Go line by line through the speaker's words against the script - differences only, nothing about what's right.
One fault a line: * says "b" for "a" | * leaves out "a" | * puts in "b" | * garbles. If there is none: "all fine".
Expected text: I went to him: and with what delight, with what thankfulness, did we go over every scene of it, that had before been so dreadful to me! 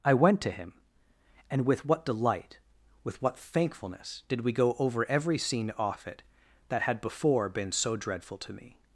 * says "off" for "of"